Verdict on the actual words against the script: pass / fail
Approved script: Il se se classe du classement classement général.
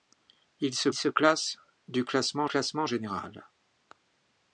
pass